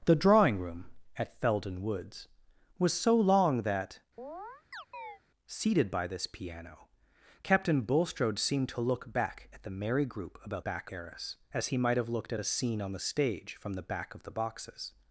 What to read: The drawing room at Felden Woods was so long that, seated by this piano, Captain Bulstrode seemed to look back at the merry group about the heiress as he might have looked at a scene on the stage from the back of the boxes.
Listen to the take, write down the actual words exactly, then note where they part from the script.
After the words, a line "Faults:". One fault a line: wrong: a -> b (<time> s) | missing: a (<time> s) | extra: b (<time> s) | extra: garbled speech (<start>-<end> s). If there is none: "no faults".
The drawing room at Felden Woods was so long that, seated by this piano, Captain Bulstrode seemed to look back at the merry group about back heiress as he might have looked at a scene on the stage from the back of the boxes.
Faults:
wrong: the -> back (10.6 s)